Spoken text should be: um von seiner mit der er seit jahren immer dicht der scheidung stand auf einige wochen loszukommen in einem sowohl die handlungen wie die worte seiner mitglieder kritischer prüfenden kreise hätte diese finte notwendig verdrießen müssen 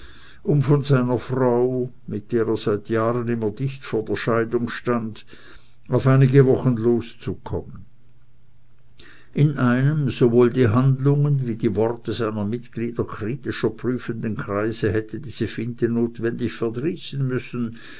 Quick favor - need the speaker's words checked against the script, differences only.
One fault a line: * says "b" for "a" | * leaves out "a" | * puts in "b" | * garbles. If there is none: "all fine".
* puts in "frau"
* puts in "vor"